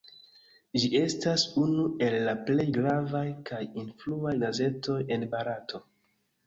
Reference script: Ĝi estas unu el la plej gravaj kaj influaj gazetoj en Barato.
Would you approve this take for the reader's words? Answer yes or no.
yes